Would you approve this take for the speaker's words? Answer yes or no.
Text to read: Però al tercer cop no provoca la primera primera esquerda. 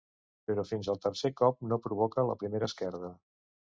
no